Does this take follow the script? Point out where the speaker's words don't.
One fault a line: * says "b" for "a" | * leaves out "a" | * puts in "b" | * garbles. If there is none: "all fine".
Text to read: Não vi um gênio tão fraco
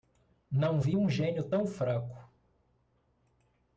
all fine